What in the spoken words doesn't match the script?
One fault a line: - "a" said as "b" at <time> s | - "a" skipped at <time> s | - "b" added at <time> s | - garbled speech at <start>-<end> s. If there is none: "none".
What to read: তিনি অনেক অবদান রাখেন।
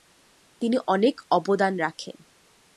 none